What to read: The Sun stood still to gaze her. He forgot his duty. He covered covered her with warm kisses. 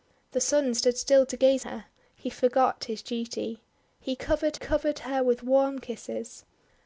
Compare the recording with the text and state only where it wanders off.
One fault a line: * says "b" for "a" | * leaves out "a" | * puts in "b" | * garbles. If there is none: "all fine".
all fine